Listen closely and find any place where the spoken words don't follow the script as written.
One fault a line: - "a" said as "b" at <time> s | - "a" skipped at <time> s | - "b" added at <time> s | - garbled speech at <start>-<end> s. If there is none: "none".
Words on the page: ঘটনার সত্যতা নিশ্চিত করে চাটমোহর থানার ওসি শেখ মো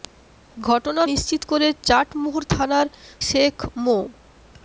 - "সত্যতা" skipped at 1.1 s
- "ওসি" skipped at 2.9 s